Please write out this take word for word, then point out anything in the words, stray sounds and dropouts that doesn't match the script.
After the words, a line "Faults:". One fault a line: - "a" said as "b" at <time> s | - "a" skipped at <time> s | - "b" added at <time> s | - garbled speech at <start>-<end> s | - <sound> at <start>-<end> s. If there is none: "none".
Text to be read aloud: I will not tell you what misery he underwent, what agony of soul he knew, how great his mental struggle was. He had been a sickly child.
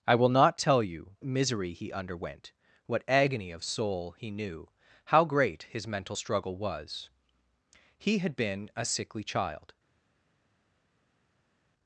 I will not tell you misery he underwent, what agony of soul he knew, how great his mental struggle was. He had been a sickly child.
Faults:
- "what" skipped at 1.1 s